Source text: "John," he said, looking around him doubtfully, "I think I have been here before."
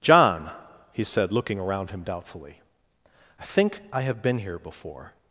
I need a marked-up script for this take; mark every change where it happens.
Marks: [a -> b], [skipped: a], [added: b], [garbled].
"John," he said, looking around him doubtfully, "I think I have been here before."